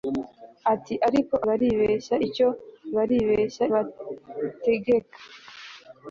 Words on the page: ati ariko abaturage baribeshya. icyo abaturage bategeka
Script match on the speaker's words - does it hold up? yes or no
no